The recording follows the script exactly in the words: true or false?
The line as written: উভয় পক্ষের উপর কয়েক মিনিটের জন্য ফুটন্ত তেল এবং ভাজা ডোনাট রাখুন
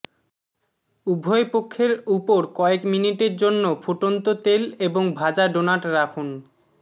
true